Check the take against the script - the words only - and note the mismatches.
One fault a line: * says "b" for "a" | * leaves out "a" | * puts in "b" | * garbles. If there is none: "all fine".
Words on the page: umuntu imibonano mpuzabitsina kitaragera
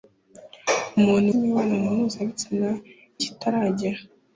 all fine